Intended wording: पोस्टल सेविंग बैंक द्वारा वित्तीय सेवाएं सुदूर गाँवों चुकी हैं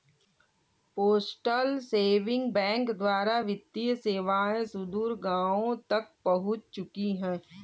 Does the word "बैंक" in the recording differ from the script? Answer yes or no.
no